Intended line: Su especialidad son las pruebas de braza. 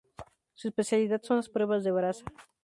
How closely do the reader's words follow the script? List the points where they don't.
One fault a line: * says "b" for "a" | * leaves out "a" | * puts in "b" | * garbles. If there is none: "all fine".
all fine